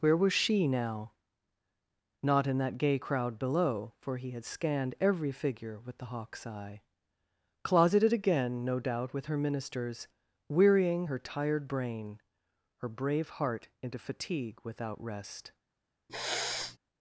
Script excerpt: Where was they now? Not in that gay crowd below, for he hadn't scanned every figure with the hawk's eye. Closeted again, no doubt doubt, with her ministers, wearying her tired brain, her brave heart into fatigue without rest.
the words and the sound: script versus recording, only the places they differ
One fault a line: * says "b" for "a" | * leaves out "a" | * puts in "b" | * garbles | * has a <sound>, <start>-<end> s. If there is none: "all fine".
* says "she" for "they"
* says "had" for "hadn't"
* leaves out "doubt"
* has a sniff, 16.1-16.8 s